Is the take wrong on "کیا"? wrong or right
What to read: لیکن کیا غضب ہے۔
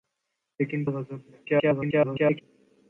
wrong